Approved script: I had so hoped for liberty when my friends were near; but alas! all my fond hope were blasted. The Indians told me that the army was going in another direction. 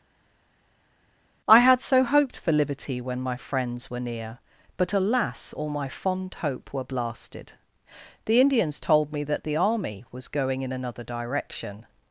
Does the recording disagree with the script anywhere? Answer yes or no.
no